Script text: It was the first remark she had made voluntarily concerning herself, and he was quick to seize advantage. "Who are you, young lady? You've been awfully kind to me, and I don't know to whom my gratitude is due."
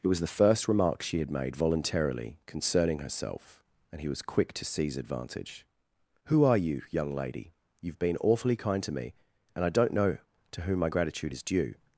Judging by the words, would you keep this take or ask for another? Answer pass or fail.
pass